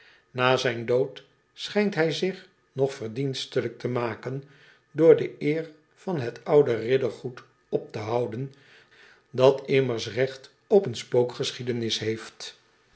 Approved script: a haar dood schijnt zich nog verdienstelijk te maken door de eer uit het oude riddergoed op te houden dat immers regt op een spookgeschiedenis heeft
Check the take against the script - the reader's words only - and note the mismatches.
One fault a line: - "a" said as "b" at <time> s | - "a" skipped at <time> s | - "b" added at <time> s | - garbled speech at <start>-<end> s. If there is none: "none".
- "haar" said as "zijn" at 0.6 s
- "hij" added at 1.9 s
- "uit" said as "van" at 5.9 s